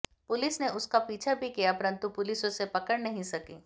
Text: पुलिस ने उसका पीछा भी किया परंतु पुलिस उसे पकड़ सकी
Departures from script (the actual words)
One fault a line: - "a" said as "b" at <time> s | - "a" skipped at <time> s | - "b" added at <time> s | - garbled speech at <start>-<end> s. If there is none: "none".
- "नहीं" added at 3.0 s